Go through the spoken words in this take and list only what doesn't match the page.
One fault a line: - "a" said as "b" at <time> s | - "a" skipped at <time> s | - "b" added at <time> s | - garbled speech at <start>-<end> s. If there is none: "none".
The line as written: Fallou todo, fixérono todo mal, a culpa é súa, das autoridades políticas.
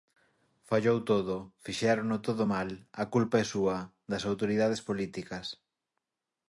none